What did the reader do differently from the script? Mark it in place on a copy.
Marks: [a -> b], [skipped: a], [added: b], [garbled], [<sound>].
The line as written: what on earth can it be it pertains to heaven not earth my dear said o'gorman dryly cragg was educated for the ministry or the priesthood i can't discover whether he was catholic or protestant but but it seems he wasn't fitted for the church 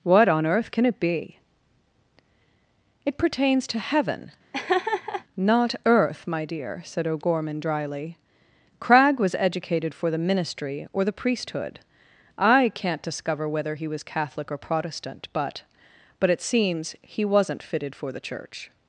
what on earth can it be it pertains to heaven [laugh] not earth my dear said o'gorman dryly cragg was educated for the ministry or the priesthood i can't discover whether he was catholic or protestant but but it seems he wasn't fitted for the church